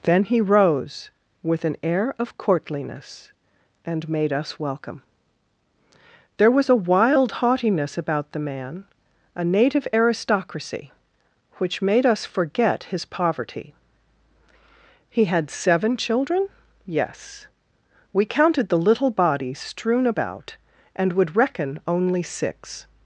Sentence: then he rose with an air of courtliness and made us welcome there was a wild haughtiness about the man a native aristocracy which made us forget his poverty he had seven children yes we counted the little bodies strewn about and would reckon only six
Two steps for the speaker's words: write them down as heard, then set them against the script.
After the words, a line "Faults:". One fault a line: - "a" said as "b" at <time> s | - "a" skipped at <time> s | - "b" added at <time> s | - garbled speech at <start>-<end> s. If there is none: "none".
then he rose with an air of courtliness and made us welcome there was a wild haughtiness about the man a native aristocracy which made us forget his poverty he had seven children yes we counted the little bodies strewn about and would reckon only six
Faults:
none